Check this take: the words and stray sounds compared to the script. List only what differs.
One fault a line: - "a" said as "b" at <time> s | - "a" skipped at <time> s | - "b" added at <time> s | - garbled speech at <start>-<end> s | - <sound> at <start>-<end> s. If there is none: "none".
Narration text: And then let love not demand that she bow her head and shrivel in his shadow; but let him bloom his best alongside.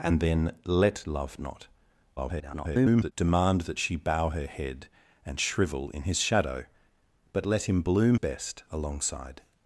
- garbled speech at 2.2-3.1 s
- "his" skipped at 8.2 s